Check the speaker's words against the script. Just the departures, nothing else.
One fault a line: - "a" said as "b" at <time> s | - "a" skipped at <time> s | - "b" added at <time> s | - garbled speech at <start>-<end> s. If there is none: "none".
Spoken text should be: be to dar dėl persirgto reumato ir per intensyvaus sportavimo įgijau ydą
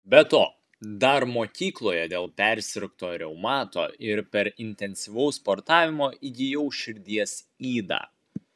- "mokykloje" added at 1.3 s
- "širdies" added at 6.8 s